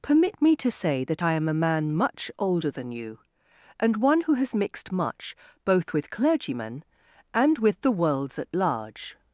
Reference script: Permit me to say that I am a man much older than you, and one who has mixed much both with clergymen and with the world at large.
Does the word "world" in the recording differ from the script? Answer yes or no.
yes